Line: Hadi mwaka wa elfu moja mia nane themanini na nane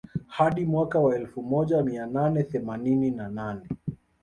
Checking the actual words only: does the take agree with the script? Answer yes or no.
yes